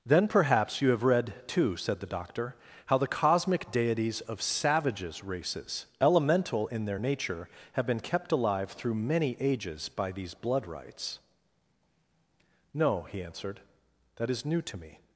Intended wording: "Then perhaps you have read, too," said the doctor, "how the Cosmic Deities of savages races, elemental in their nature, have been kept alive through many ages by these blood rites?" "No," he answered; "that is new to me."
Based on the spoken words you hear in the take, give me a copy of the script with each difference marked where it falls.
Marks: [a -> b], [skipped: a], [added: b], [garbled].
"Then perhaps you have read, too," said the doctor, "how the Cosmic Deities of savages races, elemental in their nature, have been kept alive through many ages by these blood rites?" "No," he answered; "that is new to me."